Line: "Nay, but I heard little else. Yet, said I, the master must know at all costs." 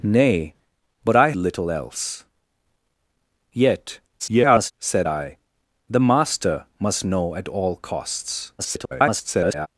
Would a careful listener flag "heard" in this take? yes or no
yes